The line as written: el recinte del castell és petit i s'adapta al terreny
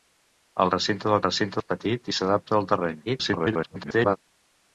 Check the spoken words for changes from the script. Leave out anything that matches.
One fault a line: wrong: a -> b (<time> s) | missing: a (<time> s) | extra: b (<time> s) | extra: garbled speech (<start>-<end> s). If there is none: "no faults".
wrong: castell -> recinte (1.3 s)
extra: garbled speech (3.1-4.2 s)